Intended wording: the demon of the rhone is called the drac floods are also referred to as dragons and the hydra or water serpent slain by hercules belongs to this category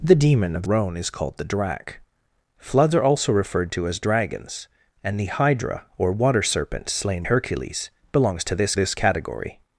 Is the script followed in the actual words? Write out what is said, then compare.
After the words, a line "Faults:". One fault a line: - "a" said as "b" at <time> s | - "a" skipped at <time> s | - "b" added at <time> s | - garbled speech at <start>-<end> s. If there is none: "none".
the demon of rhone is called the drac floods are also referred to as dragons and the hydra or water serpent slain hercules belongs to this this category
Faults:
- "the" skipped at 0.6 s
- "by" skipped at 7.2 s
- "this" added at 8.7 s